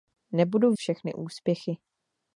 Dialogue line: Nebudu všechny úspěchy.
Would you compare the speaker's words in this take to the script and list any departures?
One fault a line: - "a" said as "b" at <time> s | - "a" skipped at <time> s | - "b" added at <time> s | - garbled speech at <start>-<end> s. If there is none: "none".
none